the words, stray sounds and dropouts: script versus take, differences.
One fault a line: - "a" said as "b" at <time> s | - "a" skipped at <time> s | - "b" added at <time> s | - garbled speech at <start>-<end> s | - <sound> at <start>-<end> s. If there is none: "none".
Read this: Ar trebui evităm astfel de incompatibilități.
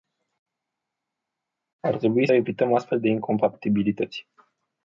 none